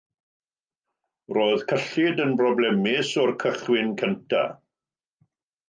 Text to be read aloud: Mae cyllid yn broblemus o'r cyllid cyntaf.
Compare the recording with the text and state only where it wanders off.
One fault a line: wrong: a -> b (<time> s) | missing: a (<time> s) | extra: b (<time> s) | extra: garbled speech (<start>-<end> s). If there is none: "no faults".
wrong: Mae -> Roedd (1.4 s)
wrong: cyllid -> cychwyn (3.5 s)